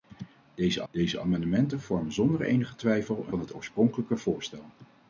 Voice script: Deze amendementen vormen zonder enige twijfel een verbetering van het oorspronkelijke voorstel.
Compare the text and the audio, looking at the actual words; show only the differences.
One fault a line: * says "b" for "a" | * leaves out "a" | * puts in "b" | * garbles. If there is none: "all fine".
* puts in "deze"
* leaves out "verbetering"